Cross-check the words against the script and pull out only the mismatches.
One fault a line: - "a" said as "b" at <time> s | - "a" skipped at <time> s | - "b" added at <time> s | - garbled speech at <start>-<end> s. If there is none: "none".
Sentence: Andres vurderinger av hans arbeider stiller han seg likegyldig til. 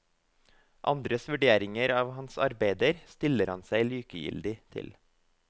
none